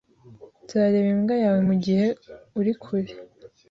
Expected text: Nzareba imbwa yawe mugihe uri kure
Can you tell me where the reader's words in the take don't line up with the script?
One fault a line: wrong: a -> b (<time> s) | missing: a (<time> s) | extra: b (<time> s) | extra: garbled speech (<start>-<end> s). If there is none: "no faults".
no faults